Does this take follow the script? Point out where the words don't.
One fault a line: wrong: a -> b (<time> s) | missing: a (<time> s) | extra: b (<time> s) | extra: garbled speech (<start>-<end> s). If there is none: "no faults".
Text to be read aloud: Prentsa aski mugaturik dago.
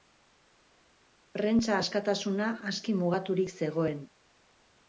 extra: askatasuna (1.8 s)
wrong: dago -> zegoen (3.6 s)